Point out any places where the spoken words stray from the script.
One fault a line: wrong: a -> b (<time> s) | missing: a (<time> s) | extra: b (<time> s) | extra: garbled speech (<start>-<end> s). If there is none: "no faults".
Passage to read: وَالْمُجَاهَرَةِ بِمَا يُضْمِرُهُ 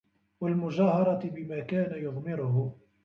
extra: كَانَ (1.6 s)